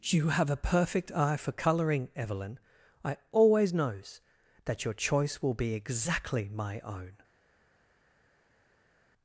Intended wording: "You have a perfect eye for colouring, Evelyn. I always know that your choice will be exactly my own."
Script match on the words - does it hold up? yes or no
no